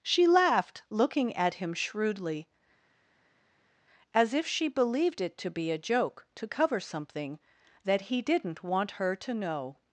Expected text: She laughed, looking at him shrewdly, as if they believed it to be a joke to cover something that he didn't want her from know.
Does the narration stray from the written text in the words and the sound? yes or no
yes